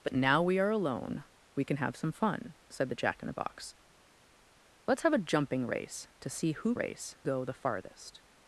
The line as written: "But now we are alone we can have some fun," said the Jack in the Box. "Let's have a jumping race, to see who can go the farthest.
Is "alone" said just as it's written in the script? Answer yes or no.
yes